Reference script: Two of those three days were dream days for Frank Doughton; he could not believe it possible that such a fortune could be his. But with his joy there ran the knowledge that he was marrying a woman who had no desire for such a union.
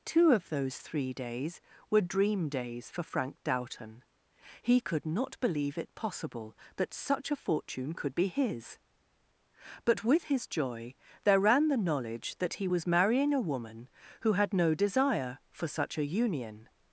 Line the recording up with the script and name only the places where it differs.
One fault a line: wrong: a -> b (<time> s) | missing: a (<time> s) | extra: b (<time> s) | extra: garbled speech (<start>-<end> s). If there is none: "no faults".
no faults